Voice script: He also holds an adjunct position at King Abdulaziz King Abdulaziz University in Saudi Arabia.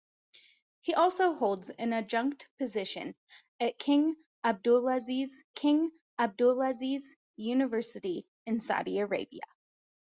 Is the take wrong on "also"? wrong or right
right